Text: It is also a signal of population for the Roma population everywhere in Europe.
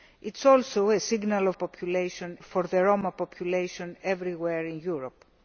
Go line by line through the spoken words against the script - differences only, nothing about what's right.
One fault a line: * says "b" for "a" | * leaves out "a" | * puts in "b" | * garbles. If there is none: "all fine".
all fine